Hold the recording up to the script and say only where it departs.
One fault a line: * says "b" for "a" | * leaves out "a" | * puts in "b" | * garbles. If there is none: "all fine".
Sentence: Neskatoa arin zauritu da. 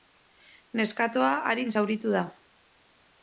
all fine